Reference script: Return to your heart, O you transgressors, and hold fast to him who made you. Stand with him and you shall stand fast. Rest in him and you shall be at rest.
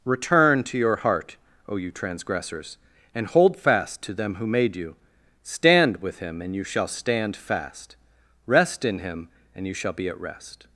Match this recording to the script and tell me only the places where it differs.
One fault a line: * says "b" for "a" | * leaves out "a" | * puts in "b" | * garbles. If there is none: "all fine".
* says "them" for "him"